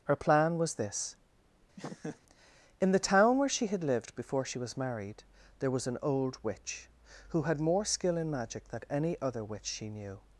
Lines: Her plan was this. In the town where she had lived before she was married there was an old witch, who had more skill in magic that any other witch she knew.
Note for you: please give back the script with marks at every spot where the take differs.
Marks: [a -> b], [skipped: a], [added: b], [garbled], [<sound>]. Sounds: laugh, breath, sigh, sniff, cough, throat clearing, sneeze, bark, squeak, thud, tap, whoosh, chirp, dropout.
Her plan was this. [laugh] In the town where she had lived before she was married there was an old witch, who had more skill in magic [that -> than] any other witch she knew.